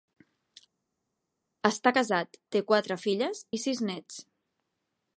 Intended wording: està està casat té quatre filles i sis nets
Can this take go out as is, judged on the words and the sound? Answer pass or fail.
fail